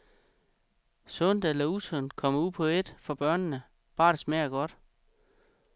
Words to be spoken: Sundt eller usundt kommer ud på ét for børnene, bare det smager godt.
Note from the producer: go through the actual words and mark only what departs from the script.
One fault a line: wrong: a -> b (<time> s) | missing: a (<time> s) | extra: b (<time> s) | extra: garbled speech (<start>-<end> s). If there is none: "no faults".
no faults